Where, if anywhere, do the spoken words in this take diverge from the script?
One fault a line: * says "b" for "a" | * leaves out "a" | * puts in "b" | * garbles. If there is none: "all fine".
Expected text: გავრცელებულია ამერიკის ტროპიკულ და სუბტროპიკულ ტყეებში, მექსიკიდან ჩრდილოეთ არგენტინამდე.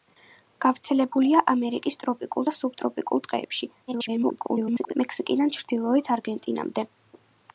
* garbles